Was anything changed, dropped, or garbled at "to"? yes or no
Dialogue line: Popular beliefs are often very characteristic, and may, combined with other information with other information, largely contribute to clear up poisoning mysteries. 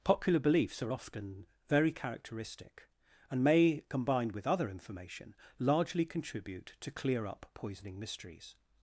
no